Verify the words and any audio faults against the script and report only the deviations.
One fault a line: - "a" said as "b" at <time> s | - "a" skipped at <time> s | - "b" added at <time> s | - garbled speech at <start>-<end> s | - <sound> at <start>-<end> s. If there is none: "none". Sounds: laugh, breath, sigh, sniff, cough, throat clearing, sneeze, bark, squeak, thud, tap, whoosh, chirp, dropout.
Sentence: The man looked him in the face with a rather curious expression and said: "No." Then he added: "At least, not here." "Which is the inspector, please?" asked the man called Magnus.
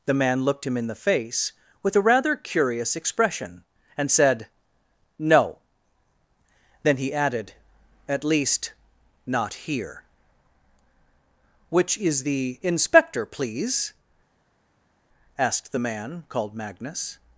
none